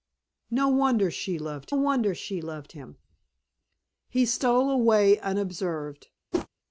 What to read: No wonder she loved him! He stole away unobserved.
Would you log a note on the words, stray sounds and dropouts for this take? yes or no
yes